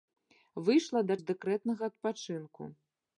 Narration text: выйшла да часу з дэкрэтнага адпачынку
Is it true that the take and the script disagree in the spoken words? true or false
true